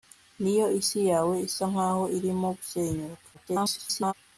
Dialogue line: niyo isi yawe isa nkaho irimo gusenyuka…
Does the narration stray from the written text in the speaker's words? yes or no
yes